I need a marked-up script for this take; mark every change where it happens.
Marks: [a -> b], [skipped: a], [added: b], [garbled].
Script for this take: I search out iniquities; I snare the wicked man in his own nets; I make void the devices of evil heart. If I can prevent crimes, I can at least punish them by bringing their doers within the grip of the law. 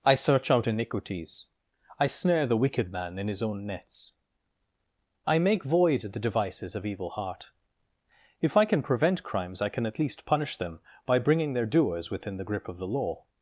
I search out iniquities; I snare the wicked man in his own nets; I make void the devices of evil heart. If I can prevent crimes, I can at least punish them by bringing their doers within the grip of the law.